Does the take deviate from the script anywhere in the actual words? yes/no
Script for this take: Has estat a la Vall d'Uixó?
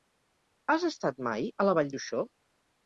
yes